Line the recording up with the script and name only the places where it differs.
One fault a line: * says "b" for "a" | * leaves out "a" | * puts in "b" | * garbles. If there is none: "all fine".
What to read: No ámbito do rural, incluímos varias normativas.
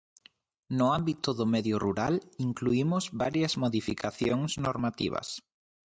* puts in "medio"
* puts in "modificacións"